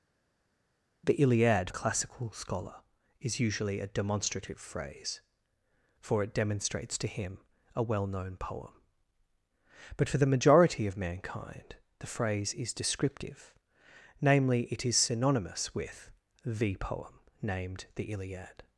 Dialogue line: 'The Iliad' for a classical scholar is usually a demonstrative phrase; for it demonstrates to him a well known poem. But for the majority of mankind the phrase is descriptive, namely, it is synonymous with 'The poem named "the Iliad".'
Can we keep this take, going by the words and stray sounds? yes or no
no